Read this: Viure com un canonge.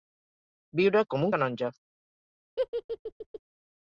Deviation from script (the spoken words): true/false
false